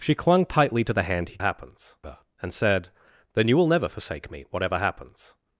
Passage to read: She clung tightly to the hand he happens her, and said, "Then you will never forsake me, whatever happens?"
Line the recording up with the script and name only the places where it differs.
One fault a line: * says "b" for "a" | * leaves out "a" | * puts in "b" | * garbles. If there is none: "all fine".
all fine